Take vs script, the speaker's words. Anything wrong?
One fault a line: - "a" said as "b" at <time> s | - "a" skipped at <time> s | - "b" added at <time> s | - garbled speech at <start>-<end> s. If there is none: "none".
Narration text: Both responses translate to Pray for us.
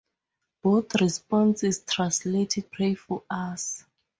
- "to" skipped at 2.6 s